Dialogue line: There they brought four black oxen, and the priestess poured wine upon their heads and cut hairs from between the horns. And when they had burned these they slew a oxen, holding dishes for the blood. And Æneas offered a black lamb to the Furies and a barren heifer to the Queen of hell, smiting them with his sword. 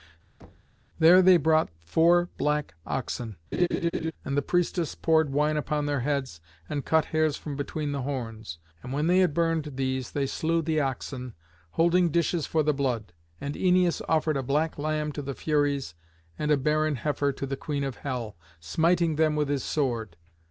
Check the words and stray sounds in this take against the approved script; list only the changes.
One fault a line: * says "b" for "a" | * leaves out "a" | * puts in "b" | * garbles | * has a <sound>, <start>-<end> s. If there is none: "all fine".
* has a thud, 0.4-0.8 s
* has a laugh, 3.5-4.1 s
* says "the" for "a"